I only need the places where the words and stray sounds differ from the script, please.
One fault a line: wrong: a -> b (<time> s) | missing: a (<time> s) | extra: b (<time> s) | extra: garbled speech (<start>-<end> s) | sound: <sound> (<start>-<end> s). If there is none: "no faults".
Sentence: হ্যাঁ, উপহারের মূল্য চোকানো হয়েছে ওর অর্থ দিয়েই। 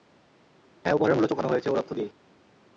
no faults